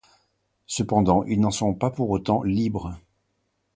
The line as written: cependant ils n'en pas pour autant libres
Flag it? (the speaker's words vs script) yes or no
yes